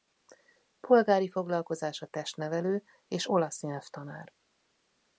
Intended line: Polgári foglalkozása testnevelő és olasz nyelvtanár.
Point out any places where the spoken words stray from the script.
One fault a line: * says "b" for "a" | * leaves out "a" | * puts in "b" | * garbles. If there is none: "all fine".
all fine